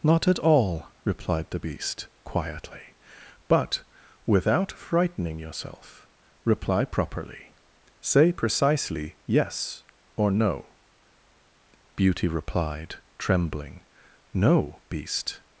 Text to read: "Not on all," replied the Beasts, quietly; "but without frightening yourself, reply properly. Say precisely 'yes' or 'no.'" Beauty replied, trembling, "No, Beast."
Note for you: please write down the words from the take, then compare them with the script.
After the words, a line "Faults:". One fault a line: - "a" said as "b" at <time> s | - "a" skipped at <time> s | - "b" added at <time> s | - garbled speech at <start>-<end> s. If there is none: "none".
"Not at all," replied the Beast, quietly; "but without frightening yourself, reply properly. Say precisely 'yes' or 'no.'" Beauty replied, trembling, "No, Beast."
Faults:
- "on" said as "at" at 0.3 s
- "Beasts" said as "Beast" at 1.6 s